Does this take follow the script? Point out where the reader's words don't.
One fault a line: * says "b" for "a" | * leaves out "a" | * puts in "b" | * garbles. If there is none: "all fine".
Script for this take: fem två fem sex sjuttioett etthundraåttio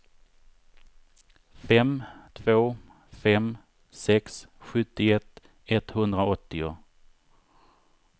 all fine